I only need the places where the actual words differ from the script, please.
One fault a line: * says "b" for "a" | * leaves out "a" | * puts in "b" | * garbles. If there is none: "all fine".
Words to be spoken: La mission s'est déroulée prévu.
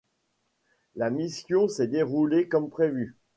* puts in "comme"